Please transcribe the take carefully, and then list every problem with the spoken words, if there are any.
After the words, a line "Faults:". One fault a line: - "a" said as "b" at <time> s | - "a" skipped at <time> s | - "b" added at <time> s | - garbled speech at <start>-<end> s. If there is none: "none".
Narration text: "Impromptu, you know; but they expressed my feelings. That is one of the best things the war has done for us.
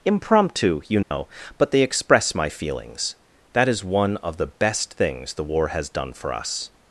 "Impromptu, you know; but they express my feelings. That is one of the best things the war has done for us.
Faults:
- "expressed" said as "express" at 1.8 s